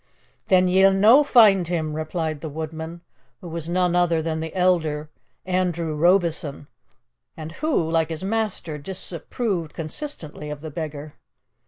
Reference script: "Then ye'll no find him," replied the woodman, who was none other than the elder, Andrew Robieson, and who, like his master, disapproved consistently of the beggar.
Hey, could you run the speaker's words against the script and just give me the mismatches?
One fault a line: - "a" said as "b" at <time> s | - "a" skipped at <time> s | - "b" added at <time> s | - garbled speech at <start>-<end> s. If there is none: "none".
none